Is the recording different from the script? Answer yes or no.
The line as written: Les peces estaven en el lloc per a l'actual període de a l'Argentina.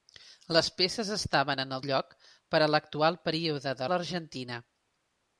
no